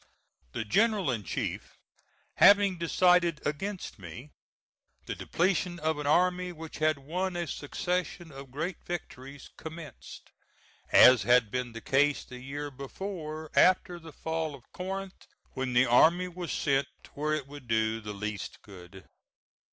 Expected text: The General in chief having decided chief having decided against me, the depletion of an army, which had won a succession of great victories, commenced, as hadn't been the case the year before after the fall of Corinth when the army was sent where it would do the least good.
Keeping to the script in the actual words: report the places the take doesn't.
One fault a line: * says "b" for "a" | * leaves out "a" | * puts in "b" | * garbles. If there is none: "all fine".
* leaves out "chief having decided"
* says "had" for "hadn't"